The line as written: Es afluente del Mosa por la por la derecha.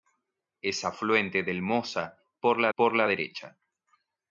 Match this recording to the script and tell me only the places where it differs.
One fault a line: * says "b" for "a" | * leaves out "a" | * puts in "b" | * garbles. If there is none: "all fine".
all fine